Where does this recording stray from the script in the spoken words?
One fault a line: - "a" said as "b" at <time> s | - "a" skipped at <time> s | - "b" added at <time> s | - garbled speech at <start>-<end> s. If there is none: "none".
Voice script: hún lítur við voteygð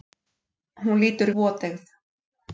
- "við" skipped at 1.3 s